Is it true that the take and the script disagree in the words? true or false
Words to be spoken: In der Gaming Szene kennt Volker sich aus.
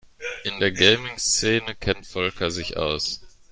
false